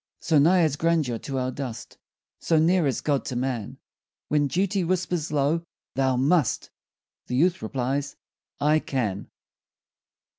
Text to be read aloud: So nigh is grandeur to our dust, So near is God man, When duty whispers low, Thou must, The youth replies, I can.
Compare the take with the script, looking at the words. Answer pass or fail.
fail